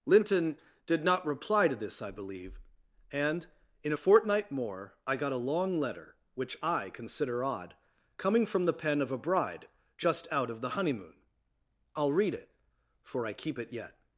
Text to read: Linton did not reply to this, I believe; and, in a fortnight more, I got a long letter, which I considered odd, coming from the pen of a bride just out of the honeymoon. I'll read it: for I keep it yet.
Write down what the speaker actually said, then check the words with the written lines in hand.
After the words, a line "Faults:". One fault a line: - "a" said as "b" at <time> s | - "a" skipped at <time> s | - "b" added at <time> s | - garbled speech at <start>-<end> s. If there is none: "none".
Linton did not reply to this, I believe; and, in a fortnight more, I got a long letter, which I consider odd, coming from the pen of a bride just out of the honeymoon. I'll read it: for I keep it yet.
Faults:
- "considered" said as "consider" at 6.9 s